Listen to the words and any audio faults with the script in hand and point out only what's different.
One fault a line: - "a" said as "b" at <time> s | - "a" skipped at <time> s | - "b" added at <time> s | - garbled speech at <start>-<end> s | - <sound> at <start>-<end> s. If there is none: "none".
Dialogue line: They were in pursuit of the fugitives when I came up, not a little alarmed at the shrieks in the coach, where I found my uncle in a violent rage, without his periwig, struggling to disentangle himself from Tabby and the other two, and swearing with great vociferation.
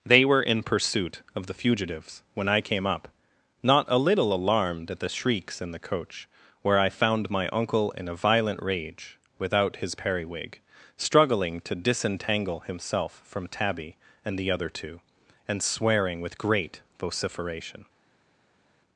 none